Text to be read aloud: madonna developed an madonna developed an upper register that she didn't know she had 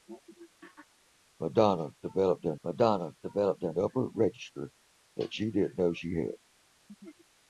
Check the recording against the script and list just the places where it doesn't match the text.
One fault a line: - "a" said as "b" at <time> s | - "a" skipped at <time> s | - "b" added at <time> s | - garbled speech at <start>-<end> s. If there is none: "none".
none